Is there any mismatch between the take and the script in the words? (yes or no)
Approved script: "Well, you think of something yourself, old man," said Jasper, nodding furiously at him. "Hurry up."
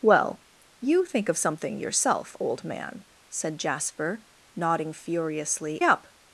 yes